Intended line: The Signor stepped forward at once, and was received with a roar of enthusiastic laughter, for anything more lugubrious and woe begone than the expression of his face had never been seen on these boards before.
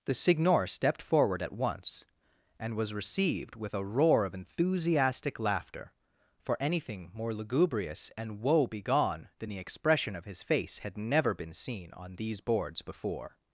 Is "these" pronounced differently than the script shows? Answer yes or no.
no